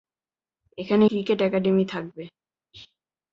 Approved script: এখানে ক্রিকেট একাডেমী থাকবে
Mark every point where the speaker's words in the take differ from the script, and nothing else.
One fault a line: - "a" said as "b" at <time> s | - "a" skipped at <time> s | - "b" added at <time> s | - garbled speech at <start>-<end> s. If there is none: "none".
none